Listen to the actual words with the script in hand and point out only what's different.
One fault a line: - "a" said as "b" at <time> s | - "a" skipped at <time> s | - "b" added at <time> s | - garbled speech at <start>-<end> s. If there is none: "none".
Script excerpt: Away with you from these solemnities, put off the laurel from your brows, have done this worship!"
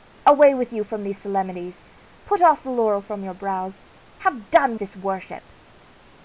none